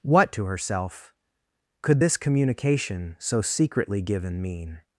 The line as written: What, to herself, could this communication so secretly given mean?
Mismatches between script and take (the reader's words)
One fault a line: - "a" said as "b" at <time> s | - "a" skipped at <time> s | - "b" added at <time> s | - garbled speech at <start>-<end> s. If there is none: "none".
none